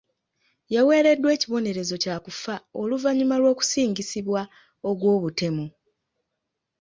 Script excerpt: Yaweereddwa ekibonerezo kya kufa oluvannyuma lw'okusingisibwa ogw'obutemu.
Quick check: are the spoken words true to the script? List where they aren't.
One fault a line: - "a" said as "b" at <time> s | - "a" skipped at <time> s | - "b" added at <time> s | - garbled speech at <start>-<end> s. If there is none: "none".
none